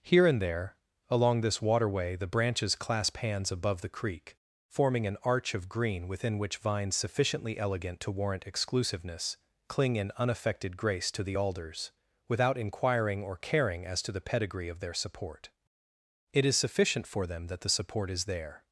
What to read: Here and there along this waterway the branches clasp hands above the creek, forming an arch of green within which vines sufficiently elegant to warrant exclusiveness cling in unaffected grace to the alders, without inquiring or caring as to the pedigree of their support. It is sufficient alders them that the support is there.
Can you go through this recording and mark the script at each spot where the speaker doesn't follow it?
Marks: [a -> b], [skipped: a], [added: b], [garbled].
Here and there along this waterway the branches clasp hands above the creek, forming an arch of green within which vines sufficiently elegant to warrant exclusiveness cling in unaffected grace to the alders, without inquiring or caring as to the pedigree of their support. It is sufficient [alders -> for] them that the support is there.